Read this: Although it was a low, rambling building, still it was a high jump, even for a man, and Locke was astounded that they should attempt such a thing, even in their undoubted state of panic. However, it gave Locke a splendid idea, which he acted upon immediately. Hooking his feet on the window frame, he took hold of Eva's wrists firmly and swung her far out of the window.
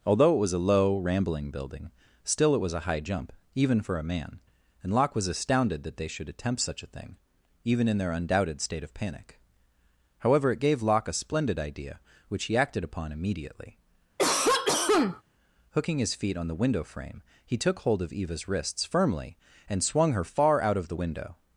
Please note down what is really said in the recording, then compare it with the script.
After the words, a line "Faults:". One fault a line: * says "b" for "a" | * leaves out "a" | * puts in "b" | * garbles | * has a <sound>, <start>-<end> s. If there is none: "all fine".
Although it was a low, rambling building, still it was a high jump, even for a man, and Locke was astounded that they should attempt such a thing, even in their undoubted state of panic. However, it gave Locke a splendid idea, which he acted upon immediately. Hooking his feet on the window frame, he took hold of Eva's wrists firmly and swung her far out of the window.
Faults:
* has a cough, 14.2-15.2 s